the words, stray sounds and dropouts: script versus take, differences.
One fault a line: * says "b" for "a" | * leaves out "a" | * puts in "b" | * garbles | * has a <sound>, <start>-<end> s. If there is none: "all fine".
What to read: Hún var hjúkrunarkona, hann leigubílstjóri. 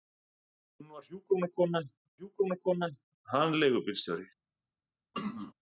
* puts in "hjúkrunarkona"
* has a throat clearing, 5.1-5.5 s